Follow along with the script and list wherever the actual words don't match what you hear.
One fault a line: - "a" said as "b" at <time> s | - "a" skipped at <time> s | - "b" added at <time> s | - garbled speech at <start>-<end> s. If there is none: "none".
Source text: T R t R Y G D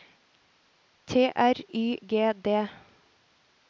- "t R" skipped at 1.6 s